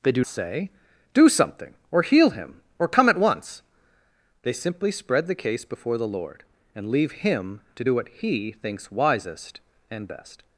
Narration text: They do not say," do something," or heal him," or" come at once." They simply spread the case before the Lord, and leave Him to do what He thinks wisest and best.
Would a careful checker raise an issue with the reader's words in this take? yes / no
yes